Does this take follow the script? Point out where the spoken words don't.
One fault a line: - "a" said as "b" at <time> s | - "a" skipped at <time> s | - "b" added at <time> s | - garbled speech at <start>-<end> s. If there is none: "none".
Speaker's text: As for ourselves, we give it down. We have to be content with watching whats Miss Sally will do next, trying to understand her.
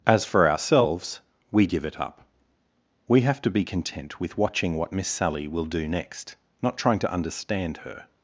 - "down" said as "up" at 2.0 s
- "whats" said as "what" at 4.8 s
- "not" added at 6.6 s